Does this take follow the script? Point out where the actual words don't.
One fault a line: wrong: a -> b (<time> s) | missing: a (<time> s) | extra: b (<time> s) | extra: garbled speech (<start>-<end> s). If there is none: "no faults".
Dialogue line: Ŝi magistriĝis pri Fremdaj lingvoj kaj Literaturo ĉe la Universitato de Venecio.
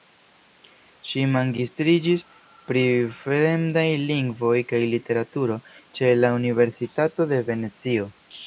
no faults